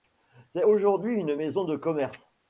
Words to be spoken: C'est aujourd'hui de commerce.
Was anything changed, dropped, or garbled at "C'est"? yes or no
no